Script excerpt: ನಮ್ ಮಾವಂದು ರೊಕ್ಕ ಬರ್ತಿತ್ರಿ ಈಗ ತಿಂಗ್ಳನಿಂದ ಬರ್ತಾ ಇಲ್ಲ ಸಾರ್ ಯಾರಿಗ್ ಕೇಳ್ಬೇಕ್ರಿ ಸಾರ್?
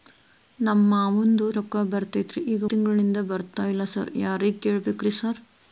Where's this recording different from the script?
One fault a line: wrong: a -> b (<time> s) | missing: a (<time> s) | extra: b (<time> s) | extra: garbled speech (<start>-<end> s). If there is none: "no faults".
no faults